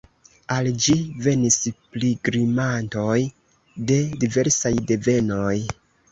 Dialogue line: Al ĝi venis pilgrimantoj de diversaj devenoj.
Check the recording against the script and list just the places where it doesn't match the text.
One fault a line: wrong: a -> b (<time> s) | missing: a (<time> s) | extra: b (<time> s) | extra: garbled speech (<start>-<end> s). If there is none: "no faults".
no faults